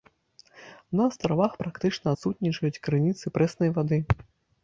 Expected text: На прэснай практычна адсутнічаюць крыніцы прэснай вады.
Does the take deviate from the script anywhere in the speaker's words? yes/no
yes